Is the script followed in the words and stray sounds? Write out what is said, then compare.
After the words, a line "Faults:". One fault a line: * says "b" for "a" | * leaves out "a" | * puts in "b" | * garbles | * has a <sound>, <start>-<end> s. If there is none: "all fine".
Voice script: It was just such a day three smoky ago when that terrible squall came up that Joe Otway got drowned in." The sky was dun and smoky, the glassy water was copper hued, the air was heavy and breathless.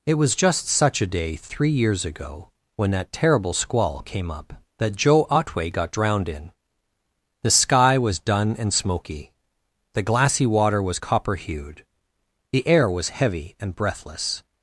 It was just such a day three years ago when that terrible squall came up that Joe Otway got drowned in." The sky was dun and smoky, the glassy water was copper hued, the air was heavy and breathless.
Faults:
* says "years" for "smoky"